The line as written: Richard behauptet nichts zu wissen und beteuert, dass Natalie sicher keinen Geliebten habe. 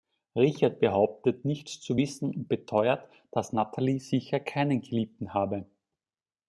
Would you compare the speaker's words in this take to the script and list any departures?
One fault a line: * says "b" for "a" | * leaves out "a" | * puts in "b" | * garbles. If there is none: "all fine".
all fine